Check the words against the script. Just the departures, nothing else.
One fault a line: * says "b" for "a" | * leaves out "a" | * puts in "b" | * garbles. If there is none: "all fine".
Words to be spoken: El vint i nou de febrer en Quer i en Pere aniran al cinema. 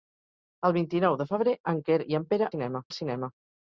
* says "cinema" for "aniran"